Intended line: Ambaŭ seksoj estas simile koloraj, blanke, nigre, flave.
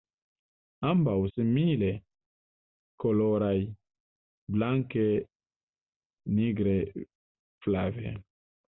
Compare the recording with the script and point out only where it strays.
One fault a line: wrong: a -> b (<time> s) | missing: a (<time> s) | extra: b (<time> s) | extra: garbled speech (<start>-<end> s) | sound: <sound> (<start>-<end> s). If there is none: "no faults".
missing: seksoj estas (1.2 s)